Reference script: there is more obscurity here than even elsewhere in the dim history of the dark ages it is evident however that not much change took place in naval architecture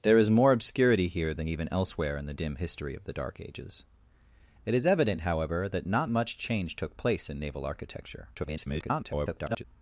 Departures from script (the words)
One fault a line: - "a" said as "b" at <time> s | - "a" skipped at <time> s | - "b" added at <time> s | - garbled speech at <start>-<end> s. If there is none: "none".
- garbled speech at 8.3-9.6 s